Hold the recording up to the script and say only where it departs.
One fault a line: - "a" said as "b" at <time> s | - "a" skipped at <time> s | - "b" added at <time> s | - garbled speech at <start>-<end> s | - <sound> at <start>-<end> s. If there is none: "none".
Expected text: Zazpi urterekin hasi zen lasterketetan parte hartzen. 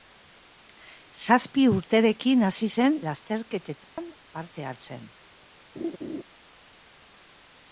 - dropout at 3.8-4.0 s
- laugh at 5.8-6.2 s